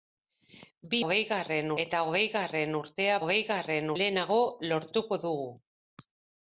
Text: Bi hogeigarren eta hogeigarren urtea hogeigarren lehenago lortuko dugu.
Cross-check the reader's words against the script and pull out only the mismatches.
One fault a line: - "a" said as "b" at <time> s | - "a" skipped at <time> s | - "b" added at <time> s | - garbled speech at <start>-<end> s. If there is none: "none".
none